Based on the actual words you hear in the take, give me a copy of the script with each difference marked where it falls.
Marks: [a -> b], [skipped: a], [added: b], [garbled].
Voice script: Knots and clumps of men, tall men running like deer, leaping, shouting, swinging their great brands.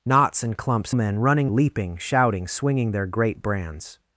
Knots and clumps [skipped: of] men, [skipped: tall men] running [skipped: like deer,] leaping, shouting, swinging their great brands.